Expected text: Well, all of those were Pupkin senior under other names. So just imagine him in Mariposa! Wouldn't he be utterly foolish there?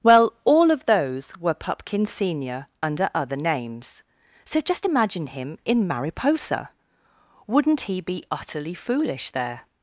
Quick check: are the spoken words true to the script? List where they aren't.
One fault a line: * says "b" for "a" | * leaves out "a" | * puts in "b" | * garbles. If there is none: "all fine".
all fine